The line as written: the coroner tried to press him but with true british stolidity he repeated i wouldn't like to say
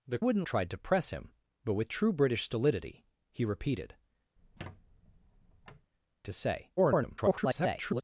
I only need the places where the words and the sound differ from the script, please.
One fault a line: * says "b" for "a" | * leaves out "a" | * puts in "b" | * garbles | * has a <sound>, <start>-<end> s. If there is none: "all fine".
* says "wouldn't" for "coroner"
* leaves out "i wouldn't like"
* has a squeak, 4.4-5.9 s
* garbles